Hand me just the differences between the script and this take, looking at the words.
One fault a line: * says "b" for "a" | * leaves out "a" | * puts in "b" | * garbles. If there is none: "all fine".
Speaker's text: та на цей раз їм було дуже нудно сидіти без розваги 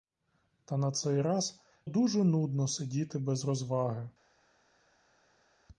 * leaves out "їм було"